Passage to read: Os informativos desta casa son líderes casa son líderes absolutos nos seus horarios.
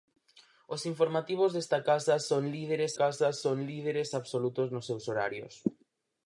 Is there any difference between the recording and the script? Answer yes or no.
no